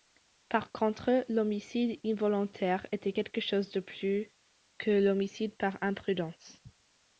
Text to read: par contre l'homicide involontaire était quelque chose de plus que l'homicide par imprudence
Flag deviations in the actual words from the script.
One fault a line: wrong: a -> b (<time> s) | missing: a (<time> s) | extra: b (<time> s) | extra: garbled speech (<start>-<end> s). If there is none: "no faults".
no faults